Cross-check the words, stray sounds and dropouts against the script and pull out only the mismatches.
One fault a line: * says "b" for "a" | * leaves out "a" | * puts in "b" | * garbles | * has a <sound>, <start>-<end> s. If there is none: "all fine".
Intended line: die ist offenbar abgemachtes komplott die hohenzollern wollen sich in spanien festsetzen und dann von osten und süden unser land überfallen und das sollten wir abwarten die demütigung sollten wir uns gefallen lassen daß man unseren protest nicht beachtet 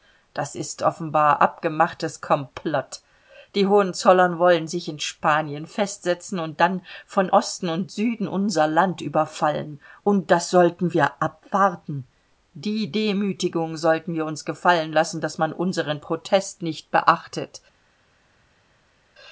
* says "das" for "die"